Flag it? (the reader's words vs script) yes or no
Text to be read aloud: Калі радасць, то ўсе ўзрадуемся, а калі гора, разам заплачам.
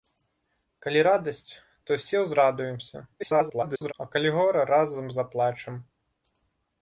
yes